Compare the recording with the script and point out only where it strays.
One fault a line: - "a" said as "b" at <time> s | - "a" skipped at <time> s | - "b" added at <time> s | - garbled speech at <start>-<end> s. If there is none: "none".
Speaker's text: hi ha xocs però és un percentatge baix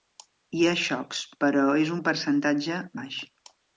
none